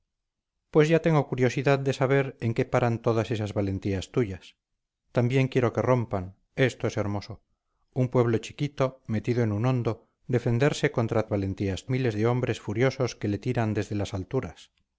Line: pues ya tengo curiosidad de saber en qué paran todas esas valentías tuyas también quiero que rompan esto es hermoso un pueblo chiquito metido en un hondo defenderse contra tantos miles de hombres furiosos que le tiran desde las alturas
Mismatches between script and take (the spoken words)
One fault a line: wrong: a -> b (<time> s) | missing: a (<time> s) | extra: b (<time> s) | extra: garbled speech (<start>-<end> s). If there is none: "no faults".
wrong: tantos -> valentías (11.3 s)